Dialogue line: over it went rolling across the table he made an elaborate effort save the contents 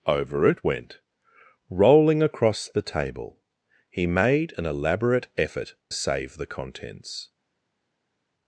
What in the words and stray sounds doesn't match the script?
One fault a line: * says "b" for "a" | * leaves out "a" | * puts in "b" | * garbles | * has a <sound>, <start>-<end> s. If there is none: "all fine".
all fine